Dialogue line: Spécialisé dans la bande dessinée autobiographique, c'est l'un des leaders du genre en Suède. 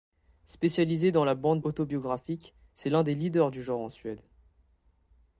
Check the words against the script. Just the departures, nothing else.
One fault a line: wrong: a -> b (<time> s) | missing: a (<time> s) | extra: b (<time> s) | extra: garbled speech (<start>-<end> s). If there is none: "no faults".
missing: dessinée (1.6 s)